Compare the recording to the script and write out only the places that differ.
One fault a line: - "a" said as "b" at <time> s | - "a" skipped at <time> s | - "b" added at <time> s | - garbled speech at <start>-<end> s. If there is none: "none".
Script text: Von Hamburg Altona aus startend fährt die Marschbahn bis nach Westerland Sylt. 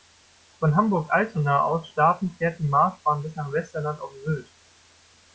- "auf" added at 4.0 s